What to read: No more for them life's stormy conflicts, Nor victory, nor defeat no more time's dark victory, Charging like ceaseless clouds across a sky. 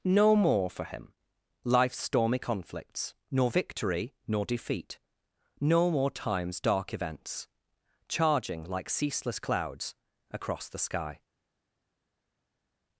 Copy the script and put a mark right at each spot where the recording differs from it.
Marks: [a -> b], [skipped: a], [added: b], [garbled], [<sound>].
No more for [them -> him] life's stormy conflicts, Nor victory, nor defeat no more time's dark [victory, -> events] Charging like ceaseless clouds across [a -> the] sky.